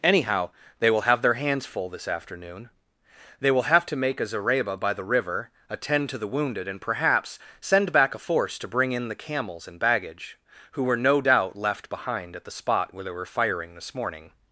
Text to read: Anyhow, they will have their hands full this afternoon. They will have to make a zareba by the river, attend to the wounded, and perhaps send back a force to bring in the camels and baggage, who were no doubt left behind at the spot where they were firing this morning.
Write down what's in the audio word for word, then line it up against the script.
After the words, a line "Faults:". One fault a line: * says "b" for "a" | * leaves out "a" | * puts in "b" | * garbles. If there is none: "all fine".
Anyhow, they will have their hands full this afternoon. They will have to make a zareba by the river, attend to the wounded, and perhaps send back a force to bring in the camels and baggage, who were no doubt left behind at the spot where they were firing this morning.
Faults:
all fine